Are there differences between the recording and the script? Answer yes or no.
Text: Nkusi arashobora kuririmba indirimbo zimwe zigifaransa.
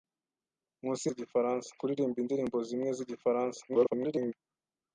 yes